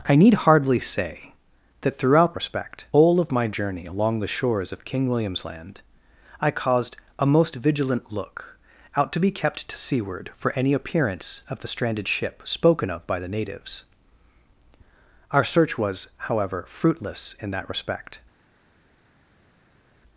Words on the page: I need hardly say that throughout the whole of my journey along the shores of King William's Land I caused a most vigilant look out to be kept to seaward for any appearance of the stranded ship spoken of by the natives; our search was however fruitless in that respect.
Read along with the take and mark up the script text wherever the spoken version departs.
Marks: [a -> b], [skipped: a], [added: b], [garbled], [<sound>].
I need hardly say that throughout [the -> respect] whole of my journey along the shores of King William's Land I caused a most vigilant look out to be kept to seaward for any appearance of the stranded ship spoken of by the natives; our search was however fruitless in that respect.